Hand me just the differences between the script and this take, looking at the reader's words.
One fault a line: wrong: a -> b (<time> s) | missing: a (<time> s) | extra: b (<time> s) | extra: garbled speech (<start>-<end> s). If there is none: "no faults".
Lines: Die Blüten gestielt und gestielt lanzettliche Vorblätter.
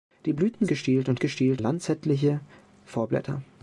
no faults